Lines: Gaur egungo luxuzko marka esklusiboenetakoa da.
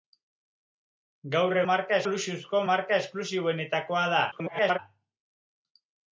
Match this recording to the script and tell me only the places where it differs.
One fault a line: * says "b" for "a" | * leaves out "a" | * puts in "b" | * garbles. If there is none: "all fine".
* says "marka" for "egungo"
* garbles